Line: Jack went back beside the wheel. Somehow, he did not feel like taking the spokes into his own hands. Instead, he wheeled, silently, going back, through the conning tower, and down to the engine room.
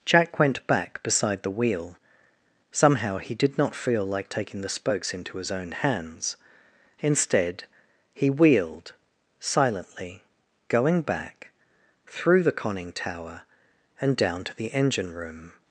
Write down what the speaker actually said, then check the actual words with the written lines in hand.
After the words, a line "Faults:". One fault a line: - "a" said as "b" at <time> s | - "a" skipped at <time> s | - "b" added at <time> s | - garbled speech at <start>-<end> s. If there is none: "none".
Jack went back beside the wheel. Somehow, he did not feel like taking the spokes into his own hands. Instead, he wheeled, silently, going back, through the conning tower, and down to the engine room.
Faults:
none